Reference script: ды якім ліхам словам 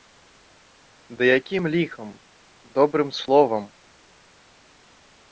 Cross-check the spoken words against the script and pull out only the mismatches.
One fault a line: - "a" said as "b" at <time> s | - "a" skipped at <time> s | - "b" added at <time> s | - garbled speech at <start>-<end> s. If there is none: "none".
- "добрым" added at 2.8 s